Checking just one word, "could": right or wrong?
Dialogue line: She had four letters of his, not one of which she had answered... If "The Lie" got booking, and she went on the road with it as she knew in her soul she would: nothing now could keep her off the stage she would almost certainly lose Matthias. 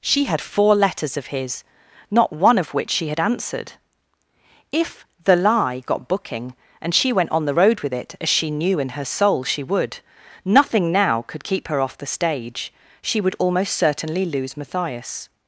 right